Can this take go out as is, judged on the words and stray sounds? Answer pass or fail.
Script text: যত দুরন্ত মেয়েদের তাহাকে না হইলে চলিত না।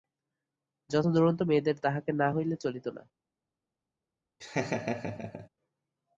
fail